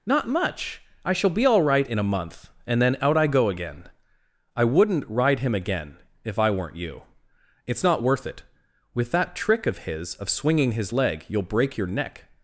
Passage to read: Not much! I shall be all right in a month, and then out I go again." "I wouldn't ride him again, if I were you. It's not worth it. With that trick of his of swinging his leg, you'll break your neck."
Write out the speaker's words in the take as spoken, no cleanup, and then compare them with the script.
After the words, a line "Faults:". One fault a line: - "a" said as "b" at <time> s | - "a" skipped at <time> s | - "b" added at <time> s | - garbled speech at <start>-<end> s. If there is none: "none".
Not much! I shall be all right in a month, and then out I go again." "I wouldn't ride him again, if I weren't you. It's not worth it. With that trick of his of swinging his leg, you'll break your neck."
Faults:
- "were" said as "weren't" at 6.5 s